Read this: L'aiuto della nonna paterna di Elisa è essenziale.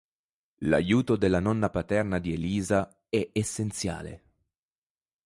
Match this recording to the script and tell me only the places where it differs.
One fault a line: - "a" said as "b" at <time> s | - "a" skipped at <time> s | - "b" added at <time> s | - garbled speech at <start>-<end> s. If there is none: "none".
none